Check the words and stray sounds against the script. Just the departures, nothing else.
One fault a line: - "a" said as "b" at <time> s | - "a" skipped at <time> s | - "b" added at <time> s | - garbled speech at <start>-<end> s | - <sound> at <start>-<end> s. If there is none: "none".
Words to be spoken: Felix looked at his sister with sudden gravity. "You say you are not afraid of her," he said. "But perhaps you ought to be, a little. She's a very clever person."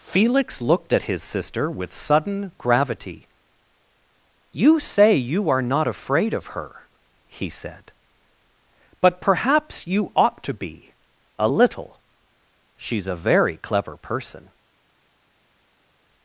none